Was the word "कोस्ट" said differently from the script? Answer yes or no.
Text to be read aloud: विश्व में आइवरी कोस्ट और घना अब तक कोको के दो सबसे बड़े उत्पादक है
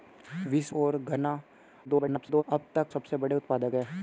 yes